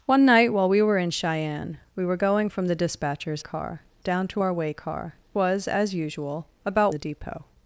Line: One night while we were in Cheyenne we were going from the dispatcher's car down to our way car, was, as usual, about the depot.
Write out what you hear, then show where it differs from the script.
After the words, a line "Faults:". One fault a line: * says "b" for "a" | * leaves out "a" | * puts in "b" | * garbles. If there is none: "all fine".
One night while we were in Cheyenne we were going from the dispatcher's car down to our way car, was, as usual, about the depot.
Faults:
all fine